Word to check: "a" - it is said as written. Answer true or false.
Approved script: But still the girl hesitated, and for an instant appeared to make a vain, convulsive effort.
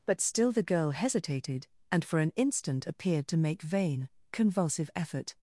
false